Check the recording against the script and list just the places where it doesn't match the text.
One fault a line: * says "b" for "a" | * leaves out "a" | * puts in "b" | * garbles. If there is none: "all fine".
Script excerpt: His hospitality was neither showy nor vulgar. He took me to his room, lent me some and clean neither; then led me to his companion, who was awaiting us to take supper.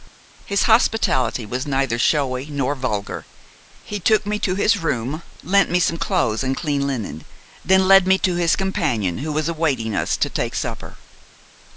* puts in "clothes"
* says "linen" for "neither"